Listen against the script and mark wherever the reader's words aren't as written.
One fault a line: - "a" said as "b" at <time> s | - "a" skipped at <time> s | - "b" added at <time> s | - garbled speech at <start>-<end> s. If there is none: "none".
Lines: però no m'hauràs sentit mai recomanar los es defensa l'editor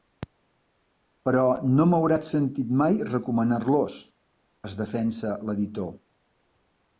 none